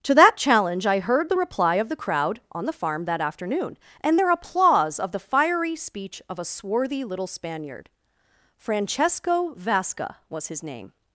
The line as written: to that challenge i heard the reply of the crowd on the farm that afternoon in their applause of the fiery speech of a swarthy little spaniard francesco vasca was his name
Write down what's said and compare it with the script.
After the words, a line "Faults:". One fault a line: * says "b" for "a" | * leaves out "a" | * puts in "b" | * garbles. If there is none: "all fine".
to that challenge i heard the reply of the crowd on the farm that afternoon and their applause of the fiery speech of a swarthy little spaniard francesco vasca was his name
Faults:
* says "and" for "in"